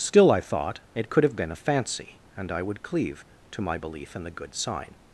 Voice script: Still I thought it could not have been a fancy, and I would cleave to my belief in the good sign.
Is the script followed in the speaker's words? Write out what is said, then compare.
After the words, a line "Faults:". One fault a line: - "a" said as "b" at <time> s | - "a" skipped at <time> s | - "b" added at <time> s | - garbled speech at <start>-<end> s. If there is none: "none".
Still I thought it could have been a fancy, and I would cleave to my belief in the good sign.
Faults:
- "not" skipped at 1.2 s